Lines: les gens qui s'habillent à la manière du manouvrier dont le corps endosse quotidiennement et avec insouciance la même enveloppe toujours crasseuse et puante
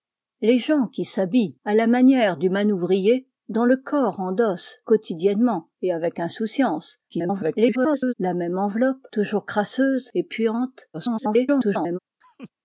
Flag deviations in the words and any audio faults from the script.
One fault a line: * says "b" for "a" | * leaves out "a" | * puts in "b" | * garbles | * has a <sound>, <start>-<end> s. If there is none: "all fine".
* garbles
* garbles
* has a laugh, 12.2-12.5 s